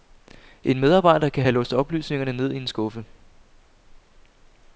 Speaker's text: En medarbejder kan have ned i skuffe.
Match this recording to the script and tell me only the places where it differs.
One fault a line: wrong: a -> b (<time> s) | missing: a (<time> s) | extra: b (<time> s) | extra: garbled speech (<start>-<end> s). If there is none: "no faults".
extra: låst oplysningerne (1.5 s)
extra: en (2.6 s)